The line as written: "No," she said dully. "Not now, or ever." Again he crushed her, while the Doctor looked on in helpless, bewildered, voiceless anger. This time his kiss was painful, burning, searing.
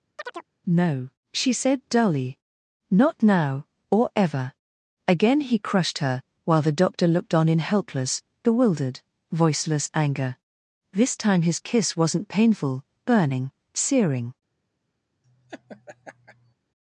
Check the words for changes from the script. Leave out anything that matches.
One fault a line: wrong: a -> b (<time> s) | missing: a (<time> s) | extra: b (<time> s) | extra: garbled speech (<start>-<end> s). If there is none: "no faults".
wrong: was -> wasn't (12.0 s)